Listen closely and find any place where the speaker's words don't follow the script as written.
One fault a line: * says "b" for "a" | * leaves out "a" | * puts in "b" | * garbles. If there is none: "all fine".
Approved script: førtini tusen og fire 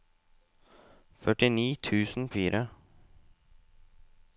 all fine